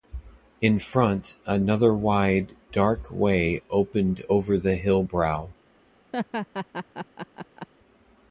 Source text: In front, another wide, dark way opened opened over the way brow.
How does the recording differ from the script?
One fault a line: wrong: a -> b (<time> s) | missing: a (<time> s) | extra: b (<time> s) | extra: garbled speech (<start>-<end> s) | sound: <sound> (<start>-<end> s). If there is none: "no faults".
missing: opened (4.2 s)
wrong: way -> hill (4.8 s)
sound: laugh (6.1-7.7 s)